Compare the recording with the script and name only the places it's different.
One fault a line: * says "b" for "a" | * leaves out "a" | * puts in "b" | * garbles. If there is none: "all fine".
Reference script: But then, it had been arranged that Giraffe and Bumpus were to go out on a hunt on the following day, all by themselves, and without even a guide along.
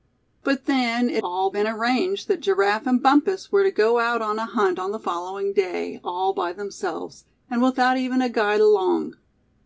* says "all" for "had"